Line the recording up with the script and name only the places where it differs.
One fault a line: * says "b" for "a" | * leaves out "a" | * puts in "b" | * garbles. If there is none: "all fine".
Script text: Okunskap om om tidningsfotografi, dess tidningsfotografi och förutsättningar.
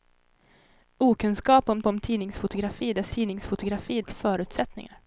all fine